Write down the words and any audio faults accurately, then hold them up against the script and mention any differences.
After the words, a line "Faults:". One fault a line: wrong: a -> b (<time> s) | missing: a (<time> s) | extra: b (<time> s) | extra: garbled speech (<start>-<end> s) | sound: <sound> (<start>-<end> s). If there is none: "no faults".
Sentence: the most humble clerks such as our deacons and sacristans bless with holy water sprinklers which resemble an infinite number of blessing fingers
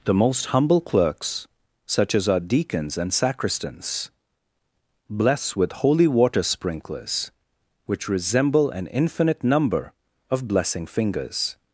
the most humble clerks such as our deacons and sacristans bless with holy water sprinklers which resemble an infinite number of blessing fingers
Faults:
no faults